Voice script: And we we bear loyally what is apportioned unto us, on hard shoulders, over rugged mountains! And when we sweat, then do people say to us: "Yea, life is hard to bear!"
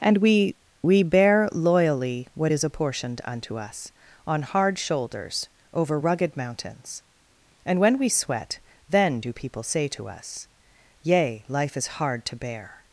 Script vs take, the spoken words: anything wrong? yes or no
no